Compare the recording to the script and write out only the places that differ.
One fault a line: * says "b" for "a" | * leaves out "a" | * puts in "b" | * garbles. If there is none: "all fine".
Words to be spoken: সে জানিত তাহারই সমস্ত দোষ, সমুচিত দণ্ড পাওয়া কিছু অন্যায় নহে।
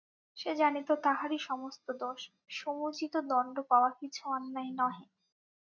all fine